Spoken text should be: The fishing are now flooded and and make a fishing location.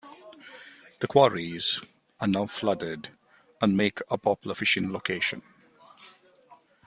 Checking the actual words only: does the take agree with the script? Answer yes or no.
no